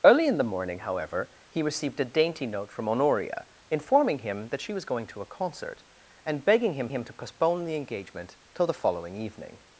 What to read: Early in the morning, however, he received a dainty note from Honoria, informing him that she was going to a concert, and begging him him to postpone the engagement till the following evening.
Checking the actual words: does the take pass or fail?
pass